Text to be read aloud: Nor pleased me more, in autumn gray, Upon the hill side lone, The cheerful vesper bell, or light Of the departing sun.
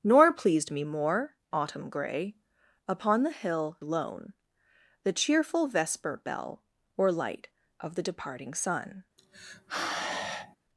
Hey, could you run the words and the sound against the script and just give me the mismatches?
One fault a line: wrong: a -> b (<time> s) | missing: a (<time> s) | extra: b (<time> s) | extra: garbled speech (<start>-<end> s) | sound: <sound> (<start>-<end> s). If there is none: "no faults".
missing: in (1.4 s)
missing: side (3.8 s)
sound: sigh (9.2-10.6 s)